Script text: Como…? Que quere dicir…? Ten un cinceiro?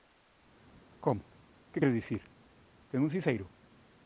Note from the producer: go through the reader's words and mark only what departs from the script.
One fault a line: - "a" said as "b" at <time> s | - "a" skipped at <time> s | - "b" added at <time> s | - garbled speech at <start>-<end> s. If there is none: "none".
none